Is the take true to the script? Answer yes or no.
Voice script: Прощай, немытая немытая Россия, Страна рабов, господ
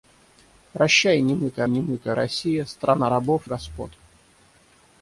yes